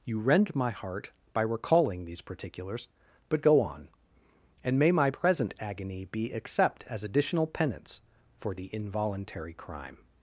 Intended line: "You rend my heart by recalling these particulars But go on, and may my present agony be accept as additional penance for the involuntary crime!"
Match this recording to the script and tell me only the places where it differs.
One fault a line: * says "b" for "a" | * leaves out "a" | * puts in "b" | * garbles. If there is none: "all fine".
all fine